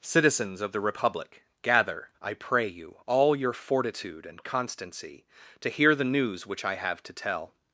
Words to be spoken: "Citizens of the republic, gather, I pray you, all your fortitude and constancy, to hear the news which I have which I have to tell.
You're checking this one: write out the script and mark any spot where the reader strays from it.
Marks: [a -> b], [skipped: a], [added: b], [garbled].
"Citizens of the republic, gather, I pray you, all your fortitude and constancy, to hear the news which I have [skipped: which I have] to tell.